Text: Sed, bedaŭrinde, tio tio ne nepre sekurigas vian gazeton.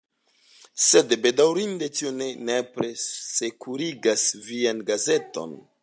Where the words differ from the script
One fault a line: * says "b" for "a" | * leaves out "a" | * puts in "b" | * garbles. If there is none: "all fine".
* leaves out "tio"